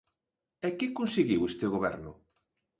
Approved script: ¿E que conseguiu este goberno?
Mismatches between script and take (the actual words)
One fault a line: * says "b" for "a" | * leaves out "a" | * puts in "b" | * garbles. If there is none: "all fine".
all fine